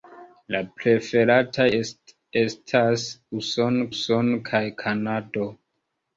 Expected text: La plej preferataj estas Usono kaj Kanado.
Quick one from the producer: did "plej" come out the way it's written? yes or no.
no